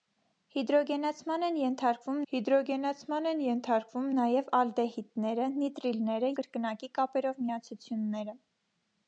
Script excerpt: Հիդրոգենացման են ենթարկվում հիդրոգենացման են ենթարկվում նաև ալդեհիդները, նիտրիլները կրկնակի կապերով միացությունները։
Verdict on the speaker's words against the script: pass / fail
pass